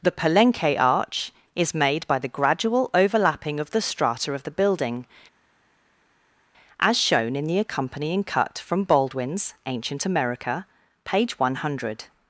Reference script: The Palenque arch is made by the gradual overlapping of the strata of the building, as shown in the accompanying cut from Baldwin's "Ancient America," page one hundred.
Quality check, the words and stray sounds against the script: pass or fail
pass